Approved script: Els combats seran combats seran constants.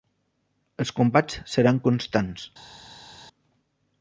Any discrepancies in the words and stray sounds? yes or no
yes